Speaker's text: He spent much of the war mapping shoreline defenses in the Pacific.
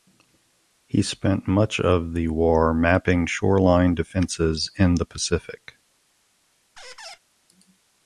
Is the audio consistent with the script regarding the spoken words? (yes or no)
yes